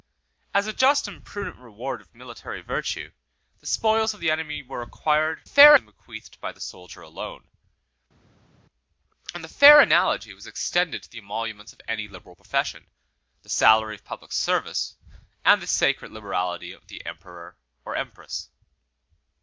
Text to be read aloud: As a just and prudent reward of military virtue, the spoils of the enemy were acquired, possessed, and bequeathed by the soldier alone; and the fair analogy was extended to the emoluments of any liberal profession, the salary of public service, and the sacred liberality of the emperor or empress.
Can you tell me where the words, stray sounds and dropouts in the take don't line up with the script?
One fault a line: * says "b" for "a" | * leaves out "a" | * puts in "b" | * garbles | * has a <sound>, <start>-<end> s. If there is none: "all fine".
* says "fair" for "possessed"